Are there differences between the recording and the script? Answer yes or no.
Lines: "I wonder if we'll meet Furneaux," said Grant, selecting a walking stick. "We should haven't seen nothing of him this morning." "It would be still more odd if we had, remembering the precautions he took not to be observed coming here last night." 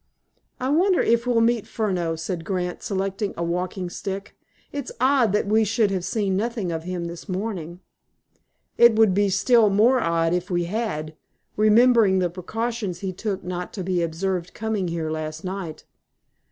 yes